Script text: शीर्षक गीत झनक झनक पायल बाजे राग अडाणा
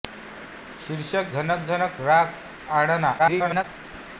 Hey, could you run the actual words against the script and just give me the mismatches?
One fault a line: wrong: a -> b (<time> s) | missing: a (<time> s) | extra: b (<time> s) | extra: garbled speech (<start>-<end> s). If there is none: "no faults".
missing: गीत (1.3 s)
missing: पायल बाजे (1.9 s)
extra: garbled speech (3.2-3.6 s)